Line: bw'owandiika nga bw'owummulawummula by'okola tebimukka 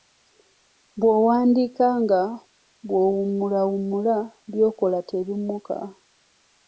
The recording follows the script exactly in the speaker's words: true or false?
true